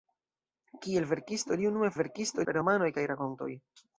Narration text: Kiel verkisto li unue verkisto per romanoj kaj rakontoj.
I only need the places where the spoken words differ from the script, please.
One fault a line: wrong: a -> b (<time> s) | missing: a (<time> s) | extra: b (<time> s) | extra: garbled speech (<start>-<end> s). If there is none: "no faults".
no faults